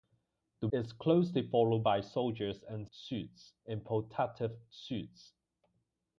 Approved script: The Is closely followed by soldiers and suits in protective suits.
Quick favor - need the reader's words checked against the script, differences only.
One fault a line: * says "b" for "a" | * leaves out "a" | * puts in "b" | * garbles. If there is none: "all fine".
all fine